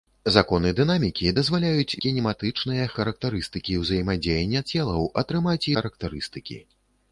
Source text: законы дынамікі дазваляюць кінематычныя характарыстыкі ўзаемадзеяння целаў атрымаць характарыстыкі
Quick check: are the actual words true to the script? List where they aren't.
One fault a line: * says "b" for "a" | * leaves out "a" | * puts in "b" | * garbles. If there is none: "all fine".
all fine